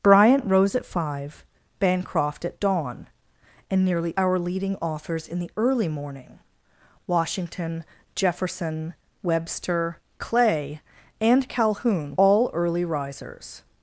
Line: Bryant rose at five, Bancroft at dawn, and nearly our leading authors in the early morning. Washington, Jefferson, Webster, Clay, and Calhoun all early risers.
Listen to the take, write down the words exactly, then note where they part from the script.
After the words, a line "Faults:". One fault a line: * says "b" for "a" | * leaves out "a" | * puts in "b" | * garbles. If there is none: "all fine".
Bryant rose at five, Bancroft at dawn, and nearly our leading authors in the early morning. Washington, Jefferson, Webster, Clay, and Calhoun all early risers.
Faults:
all fine